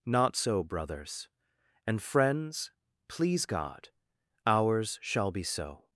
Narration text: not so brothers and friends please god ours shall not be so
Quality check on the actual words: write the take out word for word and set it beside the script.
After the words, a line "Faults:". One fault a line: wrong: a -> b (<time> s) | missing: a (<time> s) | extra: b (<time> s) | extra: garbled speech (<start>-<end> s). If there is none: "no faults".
not so brothers and friends please god ours shall be so
Faults:
missing: not (5.3 s)